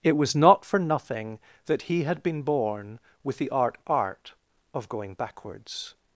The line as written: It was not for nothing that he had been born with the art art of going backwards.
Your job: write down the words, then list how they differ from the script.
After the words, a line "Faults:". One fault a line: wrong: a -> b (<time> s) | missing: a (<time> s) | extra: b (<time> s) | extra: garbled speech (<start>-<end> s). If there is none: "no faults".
It was not for nothing that he had been born with the art art of going backwards.
Faults:
no faults